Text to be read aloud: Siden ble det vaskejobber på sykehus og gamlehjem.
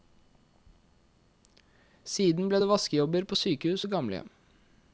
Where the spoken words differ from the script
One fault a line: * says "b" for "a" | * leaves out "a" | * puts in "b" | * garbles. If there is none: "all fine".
all fine